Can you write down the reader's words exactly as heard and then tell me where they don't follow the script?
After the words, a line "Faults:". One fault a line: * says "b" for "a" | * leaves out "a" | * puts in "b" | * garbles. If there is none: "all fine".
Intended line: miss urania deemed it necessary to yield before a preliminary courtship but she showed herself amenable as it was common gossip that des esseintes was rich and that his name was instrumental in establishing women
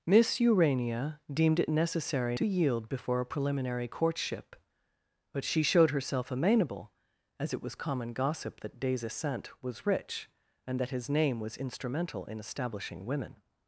miss urania deemed it necessary to yield before a preliminary courtship but she showed herself amenable as it was common gossip that des esseintes was rich and that his name was instrumental in establishing women
Faults:
all fine